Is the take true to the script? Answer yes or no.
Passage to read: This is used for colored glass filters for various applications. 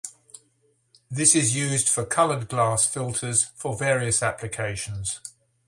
yes